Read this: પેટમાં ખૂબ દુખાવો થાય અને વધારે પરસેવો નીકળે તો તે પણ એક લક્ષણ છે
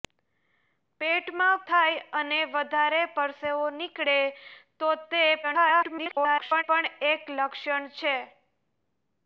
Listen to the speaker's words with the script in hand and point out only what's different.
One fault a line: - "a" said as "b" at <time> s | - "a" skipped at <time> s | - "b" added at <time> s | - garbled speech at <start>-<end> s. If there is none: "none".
- "ખૂબ દુખાવો" skipped at 1.6 s
- garbled speech at 5.4-6.6 s